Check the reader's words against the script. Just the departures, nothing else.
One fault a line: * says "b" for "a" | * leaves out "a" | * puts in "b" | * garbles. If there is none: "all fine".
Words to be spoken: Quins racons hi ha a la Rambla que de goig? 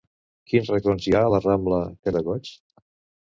all fine